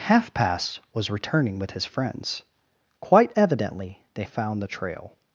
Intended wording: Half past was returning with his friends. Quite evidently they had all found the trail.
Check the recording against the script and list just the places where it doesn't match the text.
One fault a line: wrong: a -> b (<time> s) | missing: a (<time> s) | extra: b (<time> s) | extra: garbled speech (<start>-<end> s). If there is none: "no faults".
missing: had all (4.2 s)